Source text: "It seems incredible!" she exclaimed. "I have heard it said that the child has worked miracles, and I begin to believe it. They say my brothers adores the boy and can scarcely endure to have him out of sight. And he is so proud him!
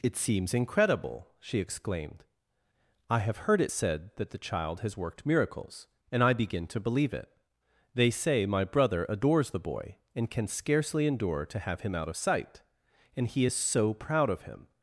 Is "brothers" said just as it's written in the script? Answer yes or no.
no